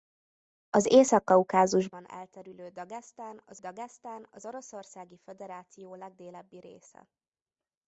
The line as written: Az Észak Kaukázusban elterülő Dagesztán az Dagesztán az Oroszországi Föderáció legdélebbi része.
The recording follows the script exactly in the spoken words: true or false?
true